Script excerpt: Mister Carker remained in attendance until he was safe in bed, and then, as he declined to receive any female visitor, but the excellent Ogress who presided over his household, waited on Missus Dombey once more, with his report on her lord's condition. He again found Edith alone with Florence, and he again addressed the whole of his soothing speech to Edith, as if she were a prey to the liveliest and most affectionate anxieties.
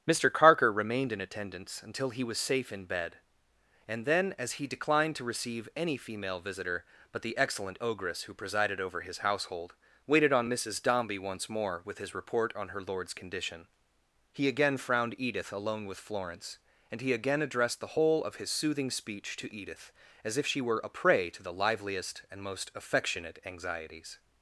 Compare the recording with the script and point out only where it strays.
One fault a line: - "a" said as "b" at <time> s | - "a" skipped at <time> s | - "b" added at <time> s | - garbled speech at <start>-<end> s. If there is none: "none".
- "found" said as "frowned" at 14.8 s